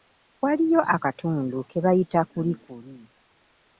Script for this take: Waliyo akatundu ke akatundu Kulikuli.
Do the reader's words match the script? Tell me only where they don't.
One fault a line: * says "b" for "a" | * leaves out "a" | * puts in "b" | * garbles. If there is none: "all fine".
* says "bayita" for "akatundu"